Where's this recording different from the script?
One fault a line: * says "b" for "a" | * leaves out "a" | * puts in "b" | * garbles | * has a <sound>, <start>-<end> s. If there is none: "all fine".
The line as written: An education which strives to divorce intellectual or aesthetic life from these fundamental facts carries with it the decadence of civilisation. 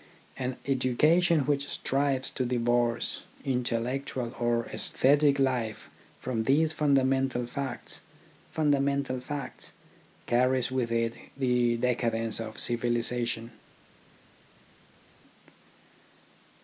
* puts in "fundamental facts"